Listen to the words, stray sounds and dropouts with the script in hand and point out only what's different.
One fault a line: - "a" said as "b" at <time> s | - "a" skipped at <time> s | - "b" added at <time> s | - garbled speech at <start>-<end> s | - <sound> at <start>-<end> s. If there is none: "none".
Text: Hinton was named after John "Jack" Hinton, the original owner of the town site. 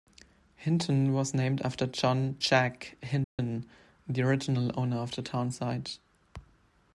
- dropout at 3.2-3.4 s